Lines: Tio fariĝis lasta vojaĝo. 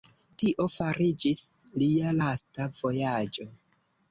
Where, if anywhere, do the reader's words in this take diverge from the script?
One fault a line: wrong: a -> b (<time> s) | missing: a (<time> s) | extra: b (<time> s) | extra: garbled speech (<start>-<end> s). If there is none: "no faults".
extra: lia (1.8 s)